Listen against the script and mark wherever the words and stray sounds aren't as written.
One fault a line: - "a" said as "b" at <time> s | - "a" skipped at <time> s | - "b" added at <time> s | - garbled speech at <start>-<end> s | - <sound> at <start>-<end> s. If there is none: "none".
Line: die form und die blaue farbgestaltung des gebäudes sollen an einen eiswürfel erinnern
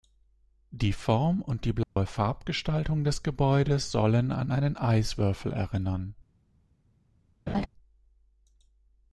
- dropout at 1.8-2.0 s
- laugh at 7.5-7.7 s